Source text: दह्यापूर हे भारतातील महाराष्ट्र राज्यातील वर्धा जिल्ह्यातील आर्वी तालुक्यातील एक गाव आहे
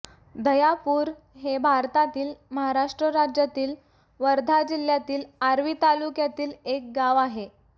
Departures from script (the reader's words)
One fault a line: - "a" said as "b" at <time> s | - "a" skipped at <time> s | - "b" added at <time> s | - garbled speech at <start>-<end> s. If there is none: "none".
none